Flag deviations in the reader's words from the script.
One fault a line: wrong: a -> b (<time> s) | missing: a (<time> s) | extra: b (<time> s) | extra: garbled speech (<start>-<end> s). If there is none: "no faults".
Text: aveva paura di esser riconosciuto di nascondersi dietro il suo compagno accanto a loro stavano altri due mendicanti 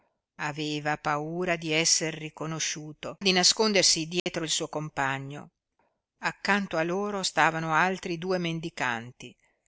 no faults